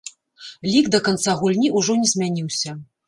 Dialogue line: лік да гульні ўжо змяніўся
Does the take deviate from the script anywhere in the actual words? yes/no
yes